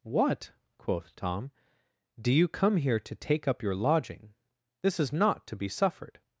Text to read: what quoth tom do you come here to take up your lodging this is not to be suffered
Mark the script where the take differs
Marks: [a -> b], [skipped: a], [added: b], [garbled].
what quoth tom do you come here to take up your lodging this is not to be suffered